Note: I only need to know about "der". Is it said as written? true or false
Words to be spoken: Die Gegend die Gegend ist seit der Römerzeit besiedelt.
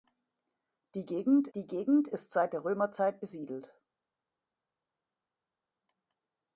true